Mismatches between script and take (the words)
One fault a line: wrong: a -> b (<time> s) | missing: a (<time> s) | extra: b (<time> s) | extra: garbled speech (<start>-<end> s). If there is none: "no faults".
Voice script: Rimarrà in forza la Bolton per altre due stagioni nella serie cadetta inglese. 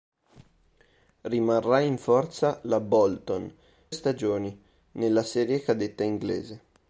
missing: per altre due (3.5 s)